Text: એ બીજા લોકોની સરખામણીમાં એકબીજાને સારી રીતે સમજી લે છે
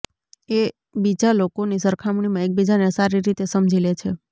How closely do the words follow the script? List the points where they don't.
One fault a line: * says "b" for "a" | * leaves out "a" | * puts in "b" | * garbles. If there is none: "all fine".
all fine